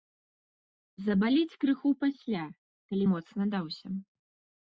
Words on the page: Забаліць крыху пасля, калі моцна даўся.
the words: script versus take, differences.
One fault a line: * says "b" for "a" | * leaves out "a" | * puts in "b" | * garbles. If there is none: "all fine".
all fine